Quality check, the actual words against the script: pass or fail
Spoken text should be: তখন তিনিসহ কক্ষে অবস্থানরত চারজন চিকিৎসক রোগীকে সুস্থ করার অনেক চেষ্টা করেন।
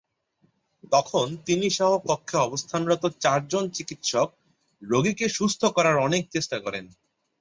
pass